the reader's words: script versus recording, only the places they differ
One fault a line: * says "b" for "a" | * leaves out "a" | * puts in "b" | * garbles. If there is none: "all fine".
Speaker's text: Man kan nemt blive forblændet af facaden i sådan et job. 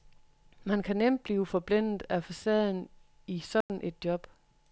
all fine